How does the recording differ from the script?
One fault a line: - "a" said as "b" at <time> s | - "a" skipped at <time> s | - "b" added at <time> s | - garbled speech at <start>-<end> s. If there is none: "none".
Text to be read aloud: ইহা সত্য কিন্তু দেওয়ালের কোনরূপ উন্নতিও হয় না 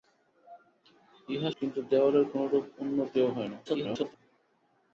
- "সত্য" skipped at 1.5 s
- garbled speech at 3.7-4.2 s